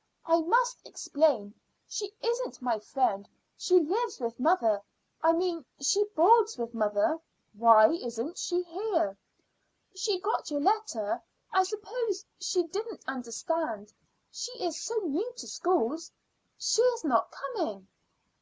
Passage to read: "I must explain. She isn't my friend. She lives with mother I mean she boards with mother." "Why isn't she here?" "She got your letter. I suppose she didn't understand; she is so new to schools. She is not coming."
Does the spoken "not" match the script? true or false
true